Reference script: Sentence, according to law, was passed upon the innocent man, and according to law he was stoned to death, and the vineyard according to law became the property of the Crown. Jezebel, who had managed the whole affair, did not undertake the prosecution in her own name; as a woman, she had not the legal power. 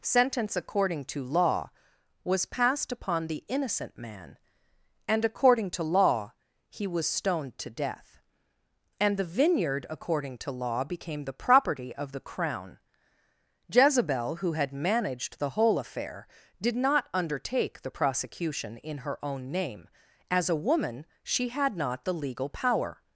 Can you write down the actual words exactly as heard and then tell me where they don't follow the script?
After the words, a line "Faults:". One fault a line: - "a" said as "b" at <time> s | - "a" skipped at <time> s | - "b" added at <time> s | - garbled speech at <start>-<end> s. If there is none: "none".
Sentence, according to law, was passed upon the innocent man, and according to law he was stoned to death, and the vineyard according to law became the property of the Crown. Jezebel, who had managed the whole affair, did not undertake the prosecution in her own name; as a woman, she had not the legal power.
Faults:
none